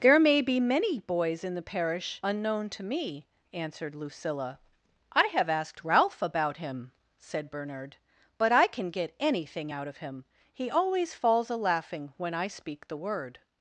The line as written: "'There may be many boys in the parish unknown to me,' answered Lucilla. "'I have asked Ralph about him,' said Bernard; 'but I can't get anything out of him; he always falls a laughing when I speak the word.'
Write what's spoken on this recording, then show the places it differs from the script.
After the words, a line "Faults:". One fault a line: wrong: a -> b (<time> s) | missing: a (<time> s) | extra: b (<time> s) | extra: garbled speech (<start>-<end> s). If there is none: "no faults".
"'There may be many boys in the parish unknown to me,' answered Lucilla. "'I have asked Ralph about him,' said Bernard; 'but I can get anything out of him; he always falls a laughing when I speak the word.'
Faults:
wrong: can't -> can (8.7 s)